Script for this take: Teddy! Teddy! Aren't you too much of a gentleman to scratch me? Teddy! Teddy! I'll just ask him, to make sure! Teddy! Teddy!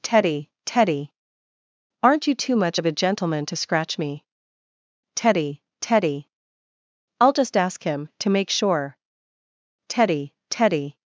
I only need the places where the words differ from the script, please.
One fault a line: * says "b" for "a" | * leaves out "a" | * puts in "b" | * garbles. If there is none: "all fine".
all fine